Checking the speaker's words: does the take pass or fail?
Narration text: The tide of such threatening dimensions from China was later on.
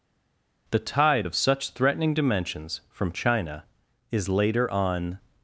fail